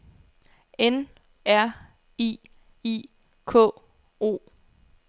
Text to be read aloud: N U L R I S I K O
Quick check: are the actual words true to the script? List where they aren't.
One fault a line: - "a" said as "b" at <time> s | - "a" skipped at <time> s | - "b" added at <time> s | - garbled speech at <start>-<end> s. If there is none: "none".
- "U L" skipped at 1.1 s
- "S" skipped at 2.4 s